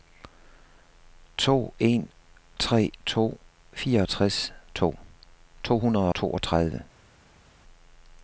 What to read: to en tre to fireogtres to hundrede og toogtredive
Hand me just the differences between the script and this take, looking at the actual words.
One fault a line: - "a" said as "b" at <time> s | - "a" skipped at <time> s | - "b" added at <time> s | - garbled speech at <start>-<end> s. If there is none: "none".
- "og" skipped at 6.1 s